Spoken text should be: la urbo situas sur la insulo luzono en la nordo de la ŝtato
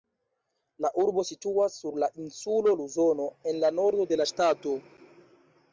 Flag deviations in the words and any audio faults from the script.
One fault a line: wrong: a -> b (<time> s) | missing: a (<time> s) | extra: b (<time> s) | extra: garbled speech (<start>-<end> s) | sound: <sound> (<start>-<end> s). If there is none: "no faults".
no faults